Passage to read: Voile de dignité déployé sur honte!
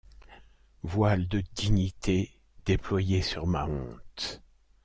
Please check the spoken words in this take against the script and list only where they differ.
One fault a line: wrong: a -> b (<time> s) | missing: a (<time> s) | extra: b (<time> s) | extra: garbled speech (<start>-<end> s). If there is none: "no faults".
extra: ma (3.5 s)